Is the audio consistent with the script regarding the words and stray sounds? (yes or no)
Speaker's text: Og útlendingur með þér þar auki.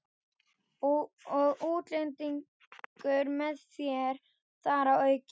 no